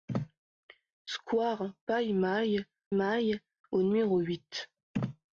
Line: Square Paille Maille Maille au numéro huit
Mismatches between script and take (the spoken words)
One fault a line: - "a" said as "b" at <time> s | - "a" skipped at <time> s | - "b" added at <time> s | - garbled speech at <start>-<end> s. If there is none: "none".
none